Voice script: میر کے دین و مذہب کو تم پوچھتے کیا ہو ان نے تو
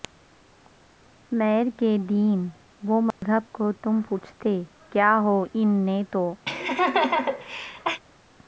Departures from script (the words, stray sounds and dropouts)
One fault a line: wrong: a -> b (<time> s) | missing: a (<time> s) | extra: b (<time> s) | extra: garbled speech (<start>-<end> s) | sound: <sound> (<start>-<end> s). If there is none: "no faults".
sound: dropout (3.1-3.2 s)
sound: laugh (6.5-8.0 s)